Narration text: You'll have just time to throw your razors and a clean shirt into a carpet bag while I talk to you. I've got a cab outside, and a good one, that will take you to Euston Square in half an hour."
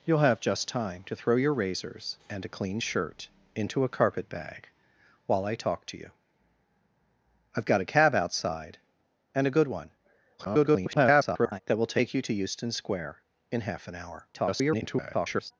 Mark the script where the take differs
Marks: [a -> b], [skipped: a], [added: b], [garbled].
You'll have just time to throw your razors and a clean shirt into a carpet bag while I talk to you. I've got a cab outside, and a good one, [garbled] that will take you to Euston Square in half an hour." [garbled]